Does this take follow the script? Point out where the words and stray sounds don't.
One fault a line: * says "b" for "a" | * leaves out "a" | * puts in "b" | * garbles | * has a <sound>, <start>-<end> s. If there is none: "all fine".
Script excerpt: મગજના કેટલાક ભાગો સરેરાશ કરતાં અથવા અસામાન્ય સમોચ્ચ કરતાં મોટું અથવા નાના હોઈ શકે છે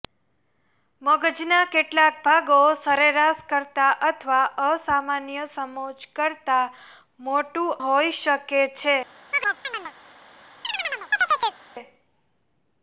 * leaves out "અથવા નાના"
* has a chirp, 9.3-9.9 s
* has a chirp, 10.6-11.6 s